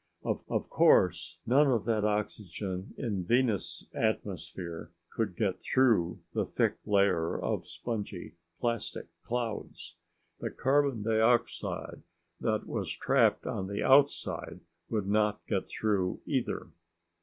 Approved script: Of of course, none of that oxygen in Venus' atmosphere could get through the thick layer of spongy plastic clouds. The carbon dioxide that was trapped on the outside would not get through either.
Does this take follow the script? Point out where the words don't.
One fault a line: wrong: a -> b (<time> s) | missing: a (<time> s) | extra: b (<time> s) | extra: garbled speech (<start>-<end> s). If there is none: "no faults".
no faults